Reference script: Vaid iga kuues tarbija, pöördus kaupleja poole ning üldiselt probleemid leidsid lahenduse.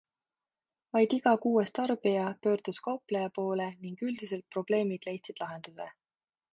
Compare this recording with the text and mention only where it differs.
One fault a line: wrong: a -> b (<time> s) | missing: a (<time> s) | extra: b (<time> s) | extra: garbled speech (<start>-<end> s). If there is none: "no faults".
no faults